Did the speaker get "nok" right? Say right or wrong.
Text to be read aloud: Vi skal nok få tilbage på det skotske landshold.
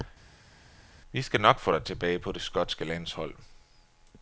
right